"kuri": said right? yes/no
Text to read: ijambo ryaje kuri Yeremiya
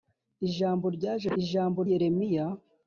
no